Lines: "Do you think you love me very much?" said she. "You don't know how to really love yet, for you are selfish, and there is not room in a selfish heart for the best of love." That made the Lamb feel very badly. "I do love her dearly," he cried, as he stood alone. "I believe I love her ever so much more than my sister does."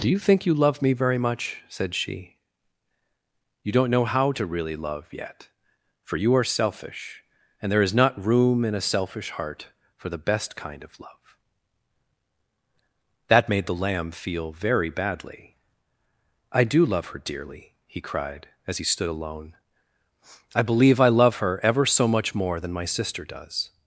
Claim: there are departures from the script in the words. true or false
true